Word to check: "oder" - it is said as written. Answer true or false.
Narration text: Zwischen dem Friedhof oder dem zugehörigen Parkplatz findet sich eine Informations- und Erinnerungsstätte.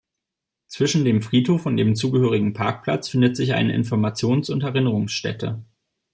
false